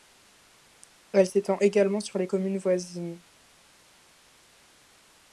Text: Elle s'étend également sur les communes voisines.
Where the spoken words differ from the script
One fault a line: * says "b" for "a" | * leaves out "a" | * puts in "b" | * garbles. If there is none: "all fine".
all fine